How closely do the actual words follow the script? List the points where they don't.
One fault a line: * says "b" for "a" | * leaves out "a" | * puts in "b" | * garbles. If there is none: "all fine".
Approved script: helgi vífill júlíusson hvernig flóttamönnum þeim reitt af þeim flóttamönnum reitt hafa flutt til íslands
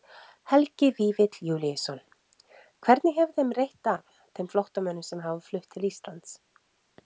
* says "hefur" for "flóttamönnum"
* says "sem" for "reitt"